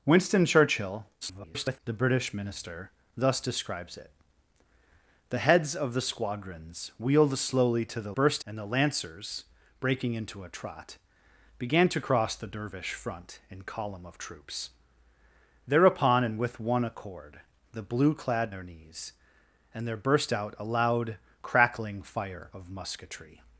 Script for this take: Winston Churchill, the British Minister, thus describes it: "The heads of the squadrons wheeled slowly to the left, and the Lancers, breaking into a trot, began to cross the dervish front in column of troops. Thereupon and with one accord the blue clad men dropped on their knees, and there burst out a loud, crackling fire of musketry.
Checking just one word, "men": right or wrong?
wrong